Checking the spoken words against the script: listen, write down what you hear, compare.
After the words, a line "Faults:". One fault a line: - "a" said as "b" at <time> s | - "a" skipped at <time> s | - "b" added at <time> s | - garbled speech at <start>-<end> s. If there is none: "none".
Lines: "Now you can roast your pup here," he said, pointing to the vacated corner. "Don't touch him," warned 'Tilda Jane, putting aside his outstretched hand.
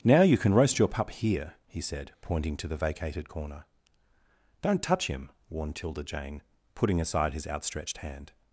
"Now you can roast your pup here," he said, pointing to the vacated corner. "Don't touch him," warned 'Tilda Jane, putting aside his outstretched hand.
Faults:
none